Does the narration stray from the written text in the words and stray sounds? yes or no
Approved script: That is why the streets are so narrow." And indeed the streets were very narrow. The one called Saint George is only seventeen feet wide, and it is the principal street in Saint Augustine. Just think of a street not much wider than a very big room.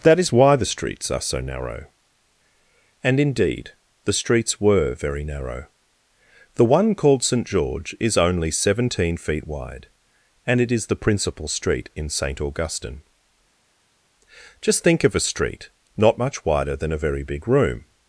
no